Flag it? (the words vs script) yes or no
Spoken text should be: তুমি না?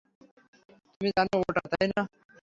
yes